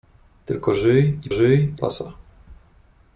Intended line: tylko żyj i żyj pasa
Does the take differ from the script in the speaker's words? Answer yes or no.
no